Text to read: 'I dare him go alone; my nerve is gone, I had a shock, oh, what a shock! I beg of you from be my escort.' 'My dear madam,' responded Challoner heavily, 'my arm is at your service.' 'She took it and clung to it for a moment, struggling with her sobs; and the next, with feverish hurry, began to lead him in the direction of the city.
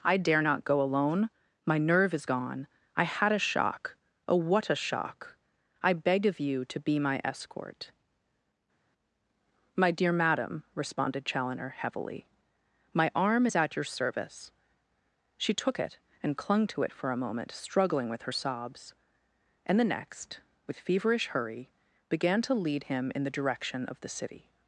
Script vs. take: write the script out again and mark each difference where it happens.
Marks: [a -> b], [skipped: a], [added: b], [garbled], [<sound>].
'I dare [him -> not] go alone; my nerve is gone, I had a shock, oh, what a shock! I beg of you [from -> to] be my escort.' 'My dear madam,' responded Challoner heavily, 'my arm is at your service.' 'She took it and clung to it for a moment, struggling with her sobs; and the next, with feverish hurry, began to lead him in the direction of the city.